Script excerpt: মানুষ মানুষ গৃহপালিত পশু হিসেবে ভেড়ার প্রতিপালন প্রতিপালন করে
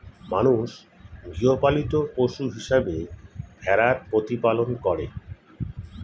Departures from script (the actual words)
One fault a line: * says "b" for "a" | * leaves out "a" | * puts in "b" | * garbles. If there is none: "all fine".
* leaves out "মানুষ"
* leaves out "প্রতিপালন"